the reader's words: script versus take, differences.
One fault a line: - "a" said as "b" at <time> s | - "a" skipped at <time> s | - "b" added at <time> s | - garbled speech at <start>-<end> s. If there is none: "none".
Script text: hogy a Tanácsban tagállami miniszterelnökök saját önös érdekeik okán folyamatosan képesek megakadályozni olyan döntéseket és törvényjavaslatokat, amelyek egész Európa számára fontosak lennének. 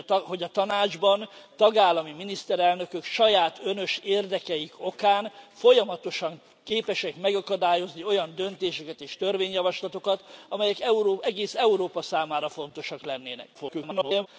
- garbled speech at 13.5-14.3 s